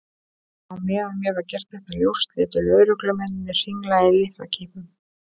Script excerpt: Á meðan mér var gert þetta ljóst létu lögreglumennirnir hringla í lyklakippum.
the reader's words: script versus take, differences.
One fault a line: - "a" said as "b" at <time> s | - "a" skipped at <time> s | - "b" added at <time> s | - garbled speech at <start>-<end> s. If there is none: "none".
none